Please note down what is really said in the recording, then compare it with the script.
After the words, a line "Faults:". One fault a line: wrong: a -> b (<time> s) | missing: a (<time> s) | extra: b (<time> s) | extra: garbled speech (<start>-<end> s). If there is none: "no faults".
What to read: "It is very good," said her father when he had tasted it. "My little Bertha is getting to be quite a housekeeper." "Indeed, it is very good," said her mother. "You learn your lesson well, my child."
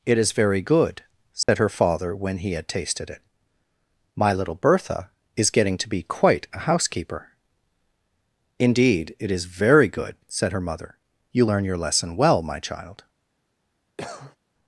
"It is very good," said her father when he had tasted it. "My little Bertha is getting to be quite a housekeeper." "Indeed, it is very good," said her mother. "You learn your lesson well, my child."
Faults:
no faults